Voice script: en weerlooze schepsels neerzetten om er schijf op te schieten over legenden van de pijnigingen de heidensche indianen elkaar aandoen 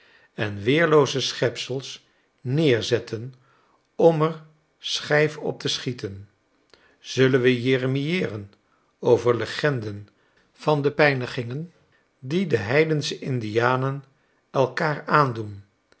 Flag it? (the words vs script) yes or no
yes